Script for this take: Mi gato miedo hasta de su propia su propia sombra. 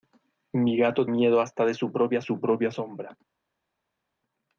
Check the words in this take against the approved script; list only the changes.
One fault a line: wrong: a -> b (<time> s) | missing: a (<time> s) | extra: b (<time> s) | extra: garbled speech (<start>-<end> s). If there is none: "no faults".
no faults